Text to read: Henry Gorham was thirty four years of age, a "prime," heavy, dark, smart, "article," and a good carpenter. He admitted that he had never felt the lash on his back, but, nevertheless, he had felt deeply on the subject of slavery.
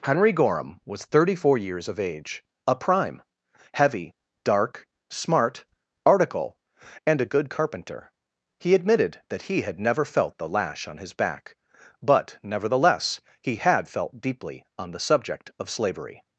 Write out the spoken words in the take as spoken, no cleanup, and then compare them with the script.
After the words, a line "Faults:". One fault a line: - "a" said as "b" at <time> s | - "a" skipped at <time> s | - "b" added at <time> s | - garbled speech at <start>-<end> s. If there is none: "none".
Henry Gorham was thirty four years of age, a "prime," heavy, dark, smart, "article," and a good carpenter. He admitted that he had never felt the lash on his back, but, nevertheless, he had felt deeply on the subject of slavery.
Faults:
none